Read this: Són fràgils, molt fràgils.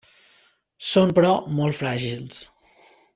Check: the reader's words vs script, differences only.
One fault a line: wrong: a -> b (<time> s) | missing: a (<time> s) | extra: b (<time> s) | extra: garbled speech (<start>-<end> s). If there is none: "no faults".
wrong: fràgils -> però (1.2 s)